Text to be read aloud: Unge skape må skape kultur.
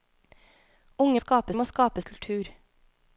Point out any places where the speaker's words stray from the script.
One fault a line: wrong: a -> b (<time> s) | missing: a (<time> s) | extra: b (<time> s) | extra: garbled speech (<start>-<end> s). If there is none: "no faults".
no faults